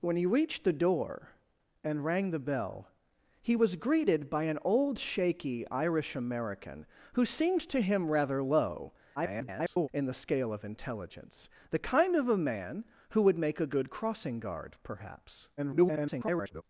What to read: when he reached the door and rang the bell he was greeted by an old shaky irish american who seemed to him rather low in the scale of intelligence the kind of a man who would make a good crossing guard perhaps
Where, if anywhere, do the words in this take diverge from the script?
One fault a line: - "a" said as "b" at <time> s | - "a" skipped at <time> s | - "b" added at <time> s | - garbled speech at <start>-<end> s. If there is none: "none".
- garbled speech at 9.2-9.9 s
- garbled speech at 15.6-16.6 s